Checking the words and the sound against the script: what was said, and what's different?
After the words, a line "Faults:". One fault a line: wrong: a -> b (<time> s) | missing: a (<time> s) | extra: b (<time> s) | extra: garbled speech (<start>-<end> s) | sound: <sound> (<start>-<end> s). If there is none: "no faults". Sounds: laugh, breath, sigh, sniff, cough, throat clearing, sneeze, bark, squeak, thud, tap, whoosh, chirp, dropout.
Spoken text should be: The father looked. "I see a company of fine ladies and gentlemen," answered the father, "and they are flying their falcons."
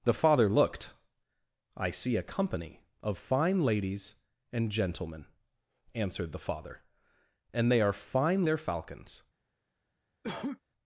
The father looked. "I see a company of fine ladies and gentlemen," answered the father, "and they are fine their falcons."
Faults:
wrong: flying -> fine (8.0 s)
sound: cough (10.2-10.6 s)